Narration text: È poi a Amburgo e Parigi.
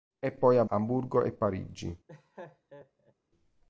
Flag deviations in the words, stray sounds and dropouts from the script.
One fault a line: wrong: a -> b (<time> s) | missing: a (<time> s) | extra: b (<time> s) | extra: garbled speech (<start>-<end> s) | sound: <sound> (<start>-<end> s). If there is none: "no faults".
sound: laugh (2.1-3.1 s)